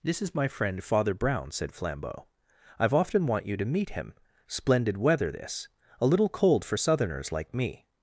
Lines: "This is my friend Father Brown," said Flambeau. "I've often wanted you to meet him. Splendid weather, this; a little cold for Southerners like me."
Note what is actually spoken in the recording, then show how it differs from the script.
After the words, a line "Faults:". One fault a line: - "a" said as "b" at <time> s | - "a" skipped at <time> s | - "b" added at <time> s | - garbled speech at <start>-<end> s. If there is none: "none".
"This is my friend Father Brown," said Flambeau. "I've often want you to meet him. Splendid weather, this; a little cold for Southerners like me."
Faults:
- "wanted" said as "want" at 3.3 s